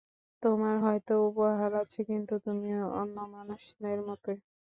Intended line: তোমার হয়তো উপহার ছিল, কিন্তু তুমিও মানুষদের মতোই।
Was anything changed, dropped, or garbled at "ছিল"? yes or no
yes